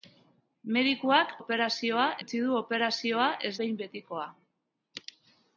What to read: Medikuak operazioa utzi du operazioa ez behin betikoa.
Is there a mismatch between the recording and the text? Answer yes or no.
no